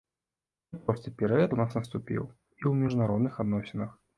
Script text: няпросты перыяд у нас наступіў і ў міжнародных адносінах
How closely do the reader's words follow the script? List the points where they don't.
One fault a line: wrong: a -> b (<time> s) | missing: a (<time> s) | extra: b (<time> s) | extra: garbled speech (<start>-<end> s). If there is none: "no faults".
no faults